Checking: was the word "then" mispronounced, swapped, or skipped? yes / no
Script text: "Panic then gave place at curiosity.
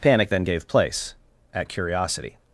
no